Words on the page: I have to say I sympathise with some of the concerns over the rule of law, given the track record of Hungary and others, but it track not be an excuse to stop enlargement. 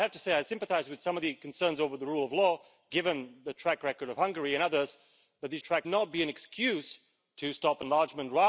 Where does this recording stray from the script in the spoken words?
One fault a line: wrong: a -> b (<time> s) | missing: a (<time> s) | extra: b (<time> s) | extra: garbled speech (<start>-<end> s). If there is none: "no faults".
no faults